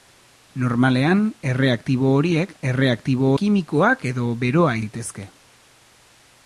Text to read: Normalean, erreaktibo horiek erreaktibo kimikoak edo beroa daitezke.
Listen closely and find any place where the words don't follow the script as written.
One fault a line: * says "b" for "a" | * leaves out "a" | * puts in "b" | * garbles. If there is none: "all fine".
all fine